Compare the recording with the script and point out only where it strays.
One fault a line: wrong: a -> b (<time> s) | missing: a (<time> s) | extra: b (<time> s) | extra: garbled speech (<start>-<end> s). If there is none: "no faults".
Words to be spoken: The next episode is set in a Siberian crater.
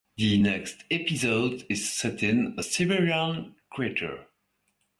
no faults